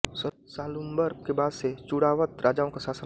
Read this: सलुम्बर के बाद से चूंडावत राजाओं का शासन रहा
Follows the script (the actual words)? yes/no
yes